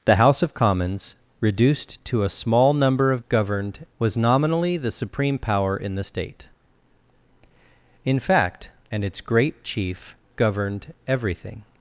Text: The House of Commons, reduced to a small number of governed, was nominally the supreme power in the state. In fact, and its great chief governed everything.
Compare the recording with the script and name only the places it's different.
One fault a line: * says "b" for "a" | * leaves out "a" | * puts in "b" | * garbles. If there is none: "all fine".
all fine